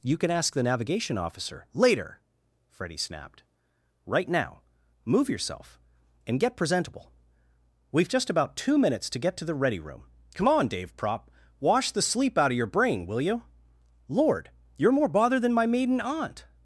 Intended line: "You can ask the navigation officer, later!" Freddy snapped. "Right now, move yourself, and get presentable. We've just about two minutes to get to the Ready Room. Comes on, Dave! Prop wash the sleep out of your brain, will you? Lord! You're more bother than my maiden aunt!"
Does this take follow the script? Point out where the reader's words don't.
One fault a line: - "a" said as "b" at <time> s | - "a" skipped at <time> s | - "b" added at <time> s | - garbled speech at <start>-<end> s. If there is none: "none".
- "Comes" said as "Come" at 10.3 s